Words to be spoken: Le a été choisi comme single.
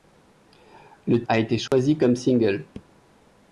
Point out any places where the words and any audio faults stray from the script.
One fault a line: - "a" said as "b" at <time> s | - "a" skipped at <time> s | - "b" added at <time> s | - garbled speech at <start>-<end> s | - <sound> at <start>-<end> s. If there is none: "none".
- dropout at 1.7-1.7 s